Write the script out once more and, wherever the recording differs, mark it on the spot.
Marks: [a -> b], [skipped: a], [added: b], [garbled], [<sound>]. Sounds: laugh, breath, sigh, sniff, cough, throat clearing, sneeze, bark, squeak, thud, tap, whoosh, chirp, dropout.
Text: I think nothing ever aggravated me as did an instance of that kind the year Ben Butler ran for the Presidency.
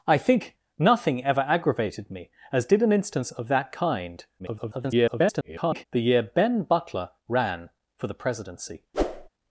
I think nothing ever aggravated me as did an instance of that kind [garbled] the year Ben Butler ran for the Presidency. [whoosh]